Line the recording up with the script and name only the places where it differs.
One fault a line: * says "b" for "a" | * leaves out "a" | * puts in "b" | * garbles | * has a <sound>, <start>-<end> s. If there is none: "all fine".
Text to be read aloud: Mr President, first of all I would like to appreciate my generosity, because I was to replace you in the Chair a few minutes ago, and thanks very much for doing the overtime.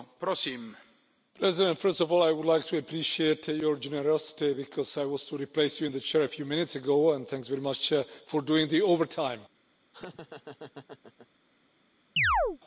* says "your" for "my"
* has a laugh, 9.9-11.3 s
* has a chirp, 12.2-12.6 s